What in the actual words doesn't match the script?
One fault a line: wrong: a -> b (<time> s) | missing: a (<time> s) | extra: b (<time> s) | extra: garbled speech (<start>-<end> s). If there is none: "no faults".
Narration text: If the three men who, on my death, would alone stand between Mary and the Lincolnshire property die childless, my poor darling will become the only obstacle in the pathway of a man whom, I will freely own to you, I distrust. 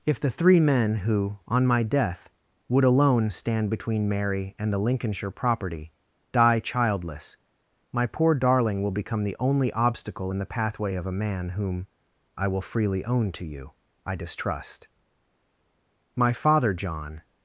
extra: My father John (16.1 s)